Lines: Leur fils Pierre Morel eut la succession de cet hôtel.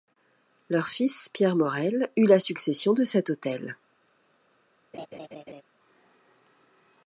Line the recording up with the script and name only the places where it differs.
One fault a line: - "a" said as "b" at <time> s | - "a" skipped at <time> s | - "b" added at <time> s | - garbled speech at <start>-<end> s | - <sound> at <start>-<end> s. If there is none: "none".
- laugh at 4.9-5.6 s